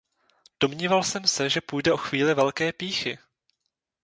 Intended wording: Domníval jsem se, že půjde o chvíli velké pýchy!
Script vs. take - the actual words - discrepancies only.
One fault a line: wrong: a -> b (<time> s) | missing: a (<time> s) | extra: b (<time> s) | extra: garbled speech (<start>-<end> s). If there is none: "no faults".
no faults